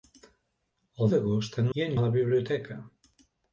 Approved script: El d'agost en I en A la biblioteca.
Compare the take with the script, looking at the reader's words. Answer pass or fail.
pass